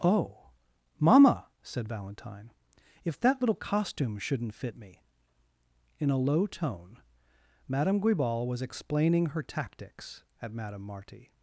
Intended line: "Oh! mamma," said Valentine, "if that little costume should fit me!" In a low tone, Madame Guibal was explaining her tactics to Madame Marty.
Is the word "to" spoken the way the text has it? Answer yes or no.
no